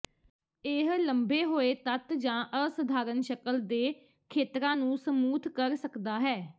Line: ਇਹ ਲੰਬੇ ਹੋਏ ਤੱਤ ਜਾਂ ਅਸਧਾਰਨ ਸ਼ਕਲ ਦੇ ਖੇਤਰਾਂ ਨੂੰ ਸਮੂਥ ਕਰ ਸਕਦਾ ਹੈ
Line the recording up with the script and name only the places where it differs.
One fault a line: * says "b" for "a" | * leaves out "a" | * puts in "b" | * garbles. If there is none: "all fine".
all fine